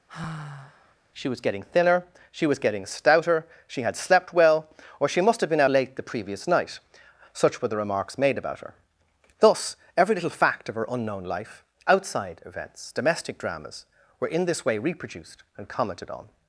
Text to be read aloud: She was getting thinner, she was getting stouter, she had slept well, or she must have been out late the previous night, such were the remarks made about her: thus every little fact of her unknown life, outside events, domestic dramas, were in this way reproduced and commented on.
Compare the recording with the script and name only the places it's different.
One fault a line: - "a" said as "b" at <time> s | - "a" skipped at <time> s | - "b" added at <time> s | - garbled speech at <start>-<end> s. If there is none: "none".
- "out" skipped at 5.6 s